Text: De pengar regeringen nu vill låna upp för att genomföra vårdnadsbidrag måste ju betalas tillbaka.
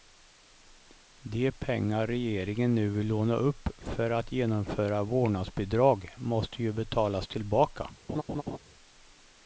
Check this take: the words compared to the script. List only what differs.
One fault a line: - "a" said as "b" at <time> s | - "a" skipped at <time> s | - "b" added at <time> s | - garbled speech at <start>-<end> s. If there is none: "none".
none